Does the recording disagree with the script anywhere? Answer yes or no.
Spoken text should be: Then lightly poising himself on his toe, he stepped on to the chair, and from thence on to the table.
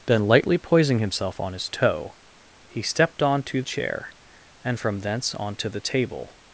yes